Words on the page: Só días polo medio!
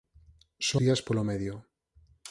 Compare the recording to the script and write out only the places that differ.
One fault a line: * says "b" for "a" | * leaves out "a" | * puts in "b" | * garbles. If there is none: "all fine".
all fine